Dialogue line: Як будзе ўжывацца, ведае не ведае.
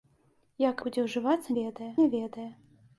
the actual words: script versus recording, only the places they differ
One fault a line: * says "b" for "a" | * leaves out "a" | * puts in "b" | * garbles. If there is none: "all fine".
all fine